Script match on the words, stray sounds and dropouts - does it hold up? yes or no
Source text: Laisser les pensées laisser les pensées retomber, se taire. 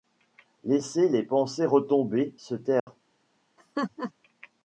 no